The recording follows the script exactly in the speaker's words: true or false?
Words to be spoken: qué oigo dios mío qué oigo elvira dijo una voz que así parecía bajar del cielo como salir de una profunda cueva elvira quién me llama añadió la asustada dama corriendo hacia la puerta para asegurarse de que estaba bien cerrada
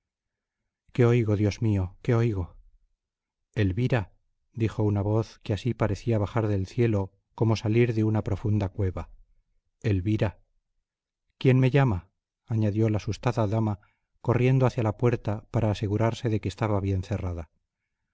true